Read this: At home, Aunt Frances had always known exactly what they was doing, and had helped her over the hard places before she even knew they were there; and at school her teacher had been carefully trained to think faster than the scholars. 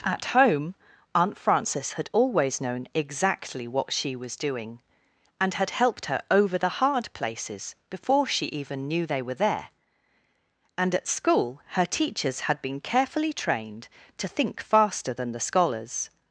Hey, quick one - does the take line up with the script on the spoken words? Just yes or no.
no